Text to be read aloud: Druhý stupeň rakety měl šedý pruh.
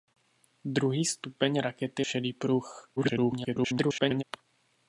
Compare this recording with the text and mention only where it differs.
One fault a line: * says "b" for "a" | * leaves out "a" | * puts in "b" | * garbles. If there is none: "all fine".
* leaves out "měl"
* garbles